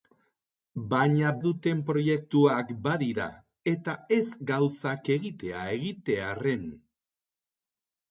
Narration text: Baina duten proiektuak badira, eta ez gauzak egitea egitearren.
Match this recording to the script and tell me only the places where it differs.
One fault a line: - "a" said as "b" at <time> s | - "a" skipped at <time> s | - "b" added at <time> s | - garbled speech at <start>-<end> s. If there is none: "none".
none